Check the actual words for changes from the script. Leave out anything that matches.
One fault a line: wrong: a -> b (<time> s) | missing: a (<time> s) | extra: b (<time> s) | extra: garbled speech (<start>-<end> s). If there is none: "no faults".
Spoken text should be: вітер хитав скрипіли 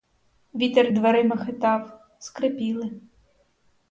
extra: дверима (0.9 s)